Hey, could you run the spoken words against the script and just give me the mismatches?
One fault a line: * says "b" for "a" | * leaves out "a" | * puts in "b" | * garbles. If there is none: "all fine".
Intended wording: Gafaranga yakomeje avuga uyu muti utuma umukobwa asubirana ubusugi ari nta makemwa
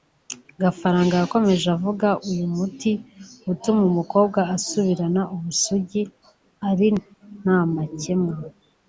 all fine